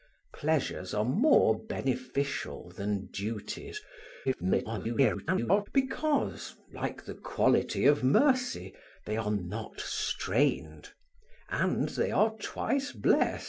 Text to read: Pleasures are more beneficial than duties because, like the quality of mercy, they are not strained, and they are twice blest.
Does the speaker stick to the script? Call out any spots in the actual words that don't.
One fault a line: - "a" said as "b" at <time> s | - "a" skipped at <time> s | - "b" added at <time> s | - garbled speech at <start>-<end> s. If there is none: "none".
- garbled speech at 4.2-5.7 s